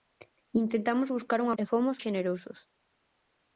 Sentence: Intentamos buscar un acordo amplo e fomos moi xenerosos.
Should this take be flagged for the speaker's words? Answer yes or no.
yes